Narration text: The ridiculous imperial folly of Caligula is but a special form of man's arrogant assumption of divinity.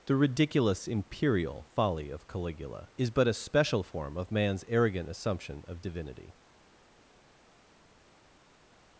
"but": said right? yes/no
yes